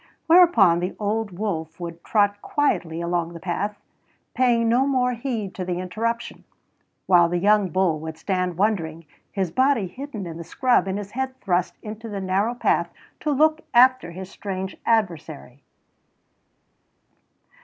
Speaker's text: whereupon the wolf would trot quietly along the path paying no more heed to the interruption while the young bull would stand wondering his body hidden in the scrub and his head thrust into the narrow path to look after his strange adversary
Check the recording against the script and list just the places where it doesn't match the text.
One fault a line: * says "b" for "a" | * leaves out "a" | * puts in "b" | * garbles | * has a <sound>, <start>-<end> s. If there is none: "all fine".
* puts in "old"